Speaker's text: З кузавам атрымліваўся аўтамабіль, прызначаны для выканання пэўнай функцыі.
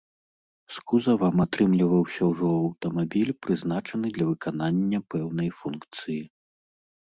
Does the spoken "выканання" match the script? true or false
true